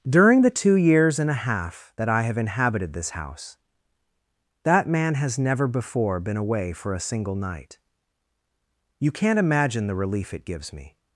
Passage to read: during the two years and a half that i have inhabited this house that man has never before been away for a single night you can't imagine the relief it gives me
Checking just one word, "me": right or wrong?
right